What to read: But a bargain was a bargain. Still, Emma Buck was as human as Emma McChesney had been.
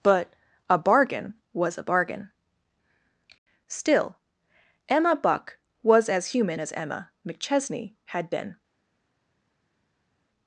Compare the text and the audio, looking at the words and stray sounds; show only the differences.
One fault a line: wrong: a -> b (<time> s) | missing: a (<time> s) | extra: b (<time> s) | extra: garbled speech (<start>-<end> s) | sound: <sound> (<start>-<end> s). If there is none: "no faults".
no faults